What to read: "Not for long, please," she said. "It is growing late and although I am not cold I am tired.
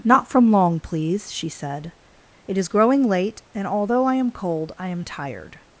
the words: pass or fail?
fail